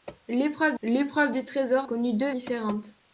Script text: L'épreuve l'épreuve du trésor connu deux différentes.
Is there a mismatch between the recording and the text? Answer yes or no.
no